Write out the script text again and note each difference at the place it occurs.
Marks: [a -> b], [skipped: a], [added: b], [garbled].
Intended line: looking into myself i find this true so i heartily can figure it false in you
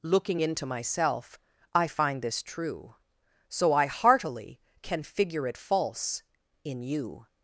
looking into myself i find this true so i heartily can figure it false in you